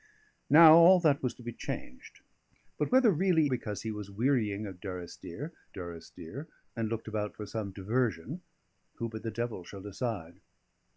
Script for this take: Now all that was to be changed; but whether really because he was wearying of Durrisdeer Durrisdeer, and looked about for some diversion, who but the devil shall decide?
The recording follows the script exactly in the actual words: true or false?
true